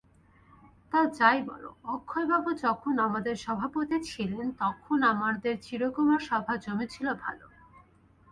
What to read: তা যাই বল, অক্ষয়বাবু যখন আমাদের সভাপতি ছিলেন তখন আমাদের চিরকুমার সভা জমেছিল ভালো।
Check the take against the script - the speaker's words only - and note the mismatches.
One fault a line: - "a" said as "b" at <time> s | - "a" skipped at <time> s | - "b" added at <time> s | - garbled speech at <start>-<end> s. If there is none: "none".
none